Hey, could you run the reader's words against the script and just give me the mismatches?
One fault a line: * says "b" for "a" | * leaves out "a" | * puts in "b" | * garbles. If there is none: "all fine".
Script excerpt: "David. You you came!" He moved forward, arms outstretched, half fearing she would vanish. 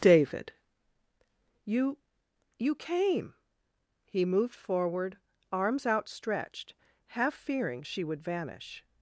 all fine